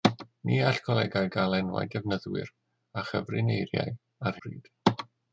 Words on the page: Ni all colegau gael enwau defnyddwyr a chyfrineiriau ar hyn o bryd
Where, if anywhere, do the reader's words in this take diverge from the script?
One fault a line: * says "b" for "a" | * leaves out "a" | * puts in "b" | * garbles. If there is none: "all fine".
* leaves out "hyn"